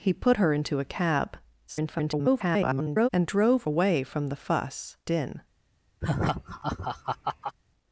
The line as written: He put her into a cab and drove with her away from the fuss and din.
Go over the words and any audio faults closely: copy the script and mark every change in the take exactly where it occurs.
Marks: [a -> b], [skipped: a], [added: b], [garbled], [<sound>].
He put her into a cab [garbled] and drove [skipped: with her] away from the fuss [skipped: and] din. [laugh]